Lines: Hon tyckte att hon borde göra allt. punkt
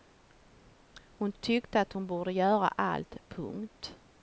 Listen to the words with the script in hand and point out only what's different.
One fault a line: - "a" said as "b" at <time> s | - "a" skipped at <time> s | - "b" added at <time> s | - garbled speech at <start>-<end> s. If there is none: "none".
none